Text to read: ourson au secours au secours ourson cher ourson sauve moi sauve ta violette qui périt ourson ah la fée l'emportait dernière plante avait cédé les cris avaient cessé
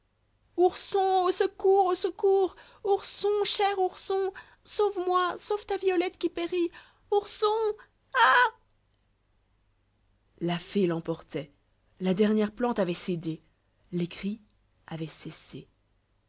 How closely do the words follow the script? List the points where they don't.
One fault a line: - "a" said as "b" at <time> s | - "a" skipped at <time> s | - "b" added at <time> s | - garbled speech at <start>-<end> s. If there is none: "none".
- "la" added at 12.0 s